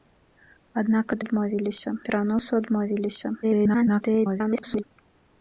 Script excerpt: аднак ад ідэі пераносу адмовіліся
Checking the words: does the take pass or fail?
fail